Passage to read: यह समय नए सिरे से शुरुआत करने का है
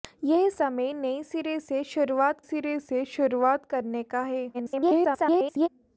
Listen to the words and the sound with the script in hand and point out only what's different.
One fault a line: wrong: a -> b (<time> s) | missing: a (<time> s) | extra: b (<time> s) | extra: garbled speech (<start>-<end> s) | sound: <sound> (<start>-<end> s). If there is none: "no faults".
extra: सिरे से शुरुआत (2.4 s)
extra: garbled speech (4.5-5.7 s)